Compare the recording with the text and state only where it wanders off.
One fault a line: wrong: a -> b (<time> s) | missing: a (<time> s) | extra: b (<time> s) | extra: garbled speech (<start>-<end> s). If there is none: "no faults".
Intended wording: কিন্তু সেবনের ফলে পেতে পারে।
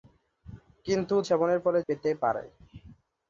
no faults